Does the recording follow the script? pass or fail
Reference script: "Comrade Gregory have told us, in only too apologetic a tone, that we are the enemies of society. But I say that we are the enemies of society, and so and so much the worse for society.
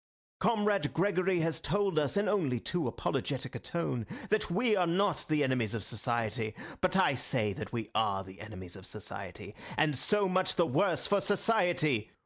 fail